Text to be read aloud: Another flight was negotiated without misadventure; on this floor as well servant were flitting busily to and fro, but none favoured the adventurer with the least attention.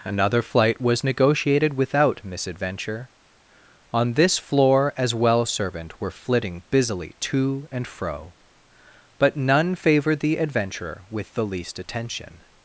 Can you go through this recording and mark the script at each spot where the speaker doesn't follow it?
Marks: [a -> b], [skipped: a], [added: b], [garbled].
Another flight was negotiated without misadventure; on this floor as well servant were flitting busily to and fro, but none favoured the adventurer with the least attention.